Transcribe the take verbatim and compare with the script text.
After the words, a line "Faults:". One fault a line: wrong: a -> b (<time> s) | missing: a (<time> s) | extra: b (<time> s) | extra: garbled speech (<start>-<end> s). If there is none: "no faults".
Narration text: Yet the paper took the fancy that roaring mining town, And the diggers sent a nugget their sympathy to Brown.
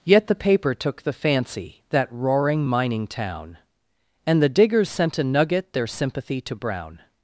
Yet the paper took the fancy that roaring mining town, And the diggers sent a nugget their sympathy to Brown.
Faults:
no faults